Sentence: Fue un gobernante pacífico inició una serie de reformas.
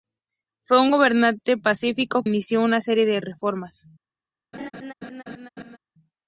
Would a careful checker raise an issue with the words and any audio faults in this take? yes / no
yes